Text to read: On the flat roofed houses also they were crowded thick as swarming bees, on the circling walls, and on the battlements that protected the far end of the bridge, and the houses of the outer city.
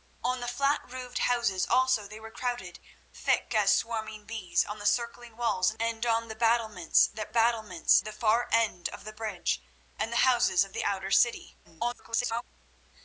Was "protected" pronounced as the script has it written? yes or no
no